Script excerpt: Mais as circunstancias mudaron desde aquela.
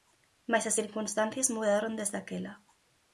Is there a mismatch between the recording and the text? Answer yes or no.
no